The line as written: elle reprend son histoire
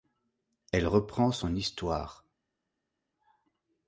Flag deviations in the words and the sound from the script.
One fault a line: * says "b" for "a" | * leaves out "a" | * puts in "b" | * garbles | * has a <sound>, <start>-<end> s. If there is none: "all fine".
all fine